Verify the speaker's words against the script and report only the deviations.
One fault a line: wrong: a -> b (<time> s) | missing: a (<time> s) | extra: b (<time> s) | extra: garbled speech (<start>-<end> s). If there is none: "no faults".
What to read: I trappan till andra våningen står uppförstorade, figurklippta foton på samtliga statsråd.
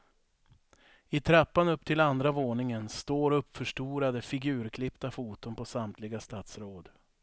extra: upp (1.7 s)